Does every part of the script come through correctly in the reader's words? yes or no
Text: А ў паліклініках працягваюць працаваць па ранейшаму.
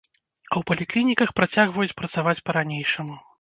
yes